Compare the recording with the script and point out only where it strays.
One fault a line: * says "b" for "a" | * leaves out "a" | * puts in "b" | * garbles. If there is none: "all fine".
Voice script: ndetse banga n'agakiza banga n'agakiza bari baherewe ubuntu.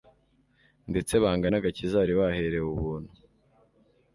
* leaves out "banga n'agakiza"